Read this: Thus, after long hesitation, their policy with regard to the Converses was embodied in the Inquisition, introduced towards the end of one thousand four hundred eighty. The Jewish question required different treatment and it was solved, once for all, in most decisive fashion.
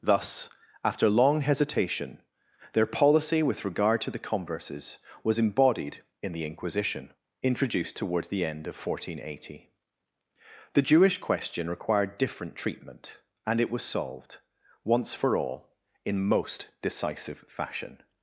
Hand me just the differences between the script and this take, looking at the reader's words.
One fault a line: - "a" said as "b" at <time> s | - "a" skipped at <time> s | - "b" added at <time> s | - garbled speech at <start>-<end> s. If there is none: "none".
none